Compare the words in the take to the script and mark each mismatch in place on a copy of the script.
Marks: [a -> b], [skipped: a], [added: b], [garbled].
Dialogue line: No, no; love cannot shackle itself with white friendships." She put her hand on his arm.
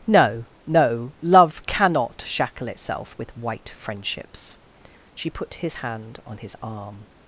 No, no; love cannot shackle itself with white friendships." She put [her -> his] hand on his arm.